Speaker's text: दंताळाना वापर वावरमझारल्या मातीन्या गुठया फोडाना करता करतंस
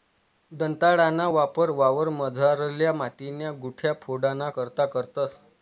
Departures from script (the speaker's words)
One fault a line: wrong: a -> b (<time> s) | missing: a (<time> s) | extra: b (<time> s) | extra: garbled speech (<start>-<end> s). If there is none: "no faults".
no faults